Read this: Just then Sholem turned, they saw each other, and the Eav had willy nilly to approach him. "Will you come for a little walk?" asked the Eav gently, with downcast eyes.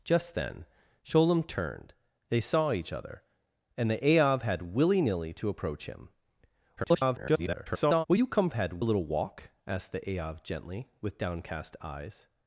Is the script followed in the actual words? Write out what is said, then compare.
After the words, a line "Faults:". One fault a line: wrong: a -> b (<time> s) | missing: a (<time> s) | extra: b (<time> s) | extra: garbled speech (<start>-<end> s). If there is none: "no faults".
Just then Sholem turned, they saw each other, and the Eav had willy nilly to approach him. [garbled] "Will you come had a little walk?" asked the Eav gently, with downcast eyes.
Faults:
extra: garbled speech (6.8-8.1 s)
wrong: for -> had (8.5 s)